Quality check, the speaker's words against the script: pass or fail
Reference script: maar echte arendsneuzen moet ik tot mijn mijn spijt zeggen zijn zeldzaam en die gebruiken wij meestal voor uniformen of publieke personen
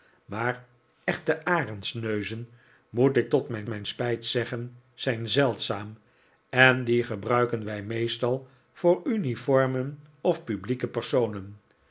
pass